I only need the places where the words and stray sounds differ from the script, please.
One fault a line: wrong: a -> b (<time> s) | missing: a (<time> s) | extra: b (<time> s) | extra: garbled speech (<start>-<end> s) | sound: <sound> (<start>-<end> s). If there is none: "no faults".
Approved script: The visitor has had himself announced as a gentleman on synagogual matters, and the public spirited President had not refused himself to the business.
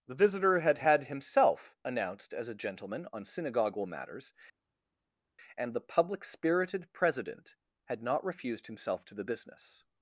wrong: has -> had (0.6 s)